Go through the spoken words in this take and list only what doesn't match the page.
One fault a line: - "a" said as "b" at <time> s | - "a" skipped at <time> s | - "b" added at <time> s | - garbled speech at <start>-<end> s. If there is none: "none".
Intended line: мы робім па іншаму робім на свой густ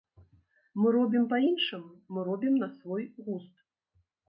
- "мы" added at 2.2 s